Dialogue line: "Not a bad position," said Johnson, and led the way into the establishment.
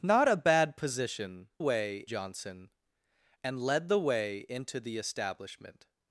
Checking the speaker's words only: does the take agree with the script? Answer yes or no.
no